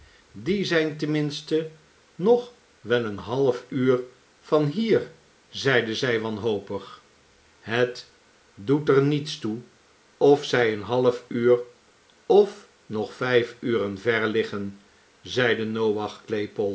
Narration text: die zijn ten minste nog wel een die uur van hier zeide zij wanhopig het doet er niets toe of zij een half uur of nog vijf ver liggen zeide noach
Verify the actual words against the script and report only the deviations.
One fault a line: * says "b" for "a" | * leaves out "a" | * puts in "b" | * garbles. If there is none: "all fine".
* says "half" for "die"
* puts in "uren"